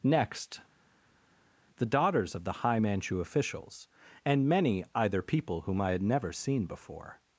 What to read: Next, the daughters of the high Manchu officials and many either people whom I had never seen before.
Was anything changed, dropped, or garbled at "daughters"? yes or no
no